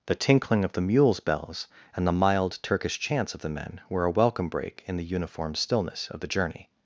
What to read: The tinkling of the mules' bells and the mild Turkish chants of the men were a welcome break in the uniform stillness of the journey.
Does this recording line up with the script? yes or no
yes